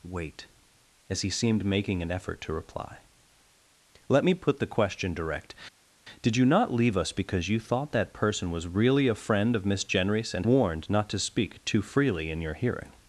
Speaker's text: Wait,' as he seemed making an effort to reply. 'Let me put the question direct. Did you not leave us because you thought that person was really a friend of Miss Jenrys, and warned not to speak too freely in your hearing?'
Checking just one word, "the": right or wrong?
right